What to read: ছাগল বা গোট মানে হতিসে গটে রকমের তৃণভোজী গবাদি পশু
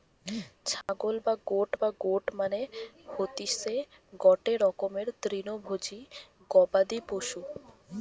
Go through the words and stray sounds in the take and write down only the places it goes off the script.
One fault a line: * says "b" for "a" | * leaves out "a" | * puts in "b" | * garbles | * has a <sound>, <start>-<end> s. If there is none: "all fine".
* has a dropout, 0.8-0.9 s
* puts in "বা গোট"